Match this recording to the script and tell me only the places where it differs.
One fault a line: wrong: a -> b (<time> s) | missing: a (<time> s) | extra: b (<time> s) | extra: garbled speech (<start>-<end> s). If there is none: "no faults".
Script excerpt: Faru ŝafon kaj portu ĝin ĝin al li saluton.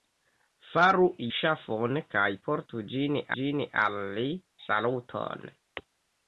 no faults